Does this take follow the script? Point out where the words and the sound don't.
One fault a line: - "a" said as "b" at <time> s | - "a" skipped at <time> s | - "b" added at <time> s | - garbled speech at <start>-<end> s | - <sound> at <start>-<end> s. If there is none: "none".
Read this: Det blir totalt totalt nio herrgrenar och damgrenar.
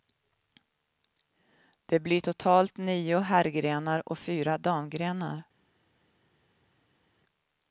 - "totalt" skipped at 2.8 s
- "fyra" added at 4.2 s